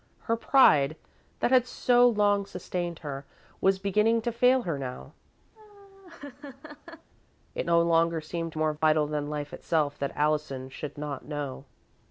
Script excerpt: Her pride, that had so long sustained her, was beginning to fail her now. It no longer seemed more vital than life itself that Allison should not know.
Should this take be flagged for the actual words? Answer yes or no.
no